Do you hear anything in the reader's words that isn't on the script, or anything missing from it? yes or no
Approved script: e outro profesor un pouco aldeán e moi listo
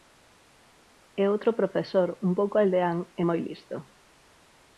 no